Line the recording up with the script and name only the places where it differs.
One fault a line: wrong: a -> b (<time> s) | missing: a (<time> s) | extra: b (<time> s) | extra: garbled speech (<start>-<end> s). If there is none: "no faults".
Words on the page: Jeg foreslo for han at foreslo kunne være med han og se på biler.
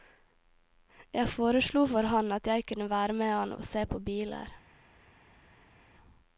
wrong: foreslo -> jeg (2.5 s)